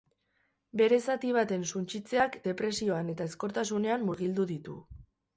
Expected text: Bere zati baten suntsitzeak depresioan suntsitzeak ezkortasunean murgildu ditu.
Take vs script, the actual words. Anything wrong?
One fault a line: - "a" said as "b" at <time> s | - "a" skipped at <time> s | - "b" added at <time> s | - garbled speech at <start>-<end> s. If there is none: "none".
- "suntsitzeak" said as "eta" at 3.2 s